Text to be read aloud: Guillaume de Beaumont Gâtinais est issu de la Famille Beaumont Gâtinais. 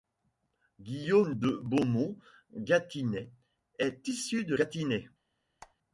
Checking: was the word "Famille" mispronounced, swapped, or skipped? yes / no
yes